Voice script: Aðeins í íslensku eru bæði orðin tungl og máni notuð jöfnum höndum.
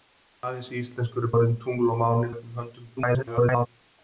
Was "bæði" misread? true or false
true